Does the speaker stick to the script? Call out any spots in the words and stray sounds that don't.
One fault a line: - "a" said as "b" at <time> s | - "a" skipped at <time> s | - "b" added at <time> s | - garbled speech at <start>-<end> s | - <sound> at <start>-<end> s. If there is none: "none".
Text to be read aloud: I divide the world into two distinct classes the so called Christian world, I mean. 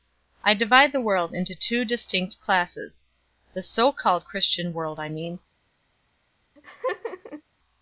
- laugh at 6.6-7.4 s